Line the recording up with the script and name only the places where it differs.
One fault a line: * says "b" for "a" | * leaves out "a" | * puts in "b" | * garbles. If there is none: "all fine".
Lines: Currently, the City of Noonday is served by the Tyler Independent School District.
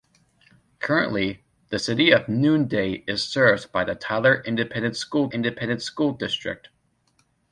* puts in "Independent School"